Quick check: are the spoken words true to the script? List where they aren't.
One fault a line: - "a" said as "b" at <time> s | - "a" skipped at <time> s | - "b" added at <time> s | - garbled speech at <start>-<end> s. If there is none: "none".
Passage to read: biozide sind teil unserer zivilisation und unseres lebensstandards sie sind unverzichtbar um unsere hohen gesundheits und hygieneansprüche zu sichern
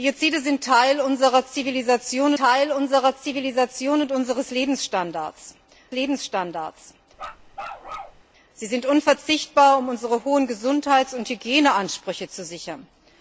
- "teil unserer zivilisation" added at 2.4 s
- "lebensstandards" added at 5.9 s